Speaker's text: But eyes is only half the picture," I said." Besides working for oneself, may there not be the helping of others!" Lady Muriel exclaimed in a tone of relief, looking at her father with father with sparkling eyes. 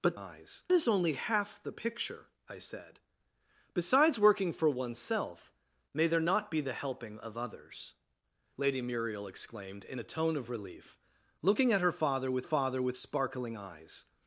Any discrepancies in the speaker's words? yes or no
no